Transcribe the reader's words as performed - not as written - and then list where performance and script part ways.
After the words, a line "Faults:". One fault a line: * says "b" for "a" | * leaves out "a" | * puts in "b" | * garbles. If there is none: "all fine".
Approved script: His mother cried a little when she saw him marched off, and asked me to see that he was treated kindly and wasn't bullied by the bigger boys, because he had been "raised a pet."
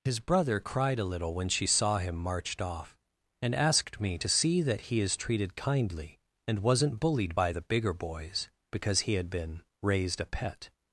His brother cried a little when she saw him marched off, and asked me to see that he is treated kindly and wasn't bullied by the bigger boys, because he had been "raised a pet."
Faults:
* says "brother" for "mother"
* says "is" for "was"